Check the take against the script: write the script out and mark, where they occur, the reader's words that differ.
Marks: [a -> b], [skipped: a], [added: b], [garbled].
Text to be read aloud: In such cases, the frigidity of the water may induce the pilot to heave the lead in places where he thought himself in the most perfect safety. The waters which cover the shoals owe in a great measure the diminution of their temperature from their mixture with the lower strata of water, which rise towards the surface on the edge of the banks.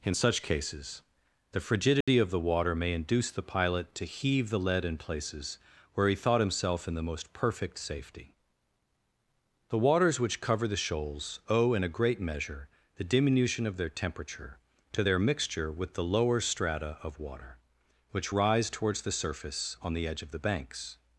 In such cases, the frigidity of the water may induce the pilot to heave the lead in places where he thought himself in the most perfect safety. The waters which cover the shoals owe in a great measure the diminution of their temperature [from -> to] their mixture with the lower strata of water, which rise towards the surface on the edge of the banks.